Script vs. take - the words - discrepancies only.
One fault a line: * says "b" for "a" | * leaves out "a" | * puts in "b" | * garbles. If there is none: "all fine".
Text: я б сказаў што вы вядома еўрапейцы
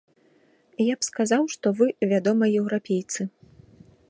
all fine